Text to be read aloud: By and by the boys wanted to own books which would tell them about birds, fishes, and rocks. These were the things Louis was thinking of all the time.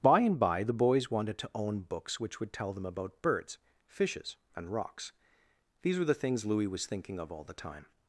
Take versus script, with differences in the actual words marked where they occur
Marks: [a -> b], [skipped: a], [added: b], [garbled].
By and by the boys wanted to own books which would tell them about birds, fishes, and rocks. These were the things Louis was thinking of all the time.